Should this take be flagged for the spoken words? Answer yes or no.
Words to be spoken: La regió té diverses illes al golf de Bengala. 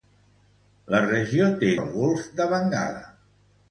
yes